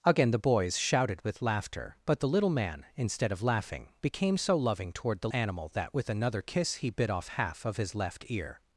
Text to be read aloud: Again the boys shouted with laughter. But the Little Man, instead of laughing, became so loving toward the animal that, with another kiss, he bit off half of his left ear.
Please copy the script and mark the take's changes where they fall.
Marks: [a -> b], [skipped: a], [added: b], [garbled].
Again the boys shouted with laughter. But the Little Man, instead of laughing, became so loving toward the animal that, with another kiss, he bit off half of his left ear.